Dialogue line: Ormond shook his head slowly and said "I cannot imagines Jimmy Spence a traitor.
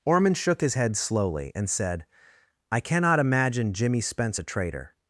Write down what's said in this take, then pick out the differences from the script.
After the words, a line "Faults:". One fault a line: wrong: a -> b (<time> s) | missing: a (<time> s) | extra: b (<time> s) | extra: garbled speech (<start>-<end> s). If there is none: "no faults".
Ormond shook his head slowly and said "I cannot imagine Jimmy Spence a traitor.
Faults:
wrong: imagines -> imagine (3.2 s)